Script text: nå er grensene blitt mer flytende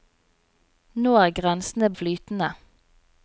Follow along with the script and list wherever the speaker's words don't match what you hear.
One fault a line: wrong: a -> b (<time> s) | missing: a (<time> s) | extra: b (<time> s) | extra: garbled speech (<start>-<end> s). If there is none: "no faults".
missing: blitt mer (1.9 s)